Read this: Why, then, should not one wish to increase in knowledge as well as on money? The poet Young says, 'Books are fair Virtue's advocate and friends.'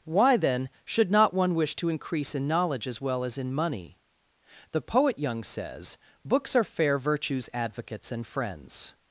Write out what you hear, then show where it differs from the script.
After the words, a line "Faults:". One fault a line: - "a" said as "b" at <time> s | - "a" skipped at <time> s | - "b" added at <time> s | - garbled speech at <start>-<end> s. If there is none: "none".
Why, then, should not one wish to increase in knowledge as well as in money? The poet Young says, 'Books are fair Virtue's advocates and friends.'
Faults:
- "on" said as "in" at 3.4 s
- "advocate" said as "advocates" at 7.5 s